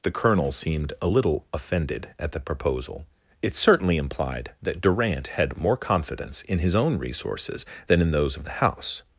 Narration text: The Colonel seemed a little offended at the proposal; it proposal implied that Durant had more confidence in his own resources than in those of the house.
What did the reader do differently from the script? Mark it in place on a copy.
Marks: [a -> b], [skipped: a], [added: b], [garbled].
The Colonel seemed a little offended at the proposal; it [proposal -> certainly] implied that Durant had more confidence in his own resources than in those of the house.